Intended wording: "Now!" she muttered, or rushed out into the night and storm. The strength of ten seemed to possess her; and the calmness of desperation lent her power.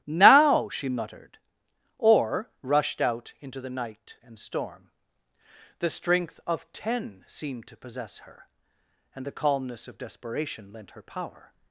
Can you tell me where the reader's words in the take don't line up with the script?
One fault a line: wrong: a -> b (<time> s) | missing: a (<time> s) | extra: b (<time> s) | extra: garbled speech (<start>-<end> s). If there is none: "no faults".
no faults